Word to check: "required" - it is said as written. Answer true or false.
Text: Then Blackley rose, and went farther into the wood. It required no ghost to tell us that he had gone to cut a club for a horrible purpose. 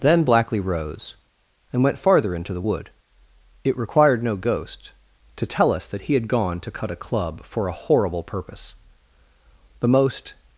true